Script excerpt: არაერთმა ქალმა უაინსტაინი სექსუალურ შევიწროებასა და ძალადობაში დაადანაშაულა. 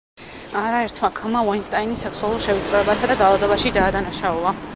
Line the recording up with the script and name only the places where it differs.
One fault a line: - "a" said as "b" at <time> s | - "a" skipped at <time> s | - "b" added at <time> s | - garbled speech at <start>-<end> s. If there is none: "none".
none